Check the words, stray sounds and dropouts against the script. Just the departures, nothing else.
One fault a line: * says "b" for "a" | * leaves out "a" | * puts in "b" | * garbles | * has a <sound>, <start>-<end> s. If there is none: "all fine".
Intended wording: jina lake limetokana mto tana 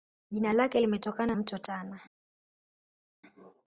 all fine